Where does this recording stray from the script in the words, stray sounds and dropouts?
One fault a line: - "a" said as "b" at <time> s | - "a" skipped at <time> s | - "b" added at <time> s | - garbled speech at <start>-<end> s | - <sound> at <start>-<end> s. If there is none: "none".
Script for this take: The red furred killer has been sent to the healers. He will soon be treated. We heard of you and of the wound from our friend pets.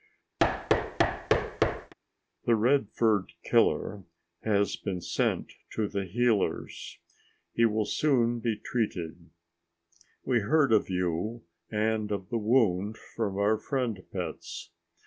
- thud at 0.4-1.9 s